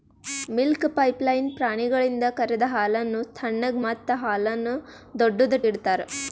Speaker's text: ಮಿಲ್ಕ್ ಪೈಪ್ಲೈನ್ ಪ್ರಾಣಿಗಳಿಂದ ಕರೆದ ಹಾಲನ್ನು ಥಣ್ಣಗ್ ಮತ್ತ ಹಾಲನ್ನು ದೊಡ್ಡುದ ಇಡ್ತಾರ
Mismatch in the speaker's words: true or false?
false